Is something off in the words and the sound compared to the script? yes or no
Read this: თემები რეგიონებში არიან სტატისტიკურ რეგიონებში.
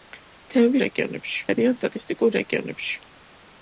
no